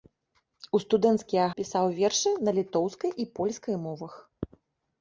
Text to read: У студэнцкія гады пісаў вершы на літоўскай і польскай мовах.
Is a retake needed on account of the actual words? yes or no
yes